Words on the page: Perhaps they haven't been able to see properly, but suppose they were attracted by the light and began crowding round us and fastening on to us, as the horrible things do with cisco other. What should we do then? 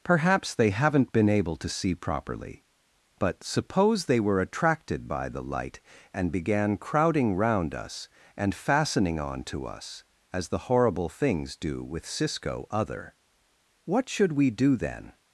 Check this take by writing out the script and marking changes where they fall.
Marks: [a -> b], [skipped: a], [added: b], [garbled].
Perhaps they haven't been able to see properly, but suppose they were attracted by the light and began crowding round us and fastening on to us, as the horrible things do with cisco other. What should we do then?